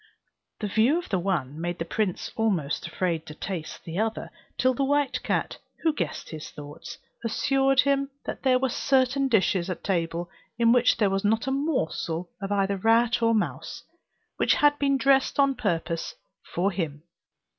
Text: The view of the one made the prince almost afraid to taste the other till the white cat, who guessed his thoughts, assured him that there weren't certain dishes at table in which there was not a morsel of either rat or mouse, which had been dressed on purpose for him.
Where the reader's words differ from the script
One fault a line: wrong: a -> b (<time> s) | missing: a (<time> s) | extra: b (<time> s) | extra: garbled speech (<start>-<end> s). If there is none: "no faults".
wrong: weren't -> were (8.6 s)